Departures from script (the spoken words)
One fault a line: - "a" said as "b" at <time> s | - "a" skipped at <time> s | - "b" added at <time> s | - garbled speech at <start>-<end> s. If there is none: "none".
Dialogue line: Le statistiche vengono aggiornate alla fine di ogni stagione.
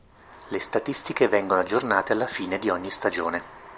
none